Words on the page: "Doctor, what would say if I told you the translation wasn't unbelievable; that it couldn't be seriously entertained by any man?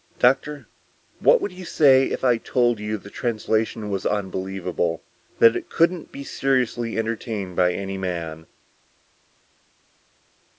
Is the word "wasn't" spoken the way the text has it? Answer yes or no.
no